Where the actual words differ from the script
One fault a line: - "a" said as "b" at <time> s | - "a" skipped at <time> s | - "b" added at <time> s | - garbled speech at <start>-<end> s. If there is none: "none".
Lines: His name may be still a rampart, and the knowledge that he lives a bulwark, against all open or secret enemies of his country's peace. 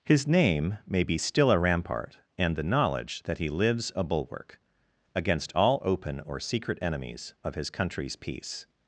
none